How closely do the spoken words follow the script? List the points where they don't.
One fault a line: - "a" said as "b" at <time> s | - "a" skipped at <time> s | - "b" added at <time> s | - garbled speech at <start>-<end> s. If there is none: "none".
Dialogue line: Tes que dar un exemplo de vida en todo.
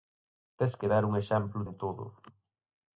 - "de vida" skipped at 1.6 s